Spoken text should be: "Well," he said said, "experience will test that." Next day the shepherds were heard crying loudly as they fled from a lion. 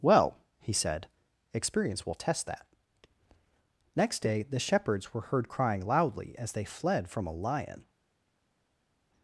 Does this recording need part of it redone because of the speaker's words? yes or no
yes